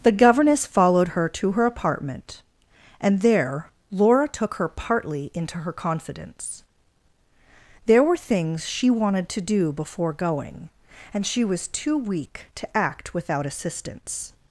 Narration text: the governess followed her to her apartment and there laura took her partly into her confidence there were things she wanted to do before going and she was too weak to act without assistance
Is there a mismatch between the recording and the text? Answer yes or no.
no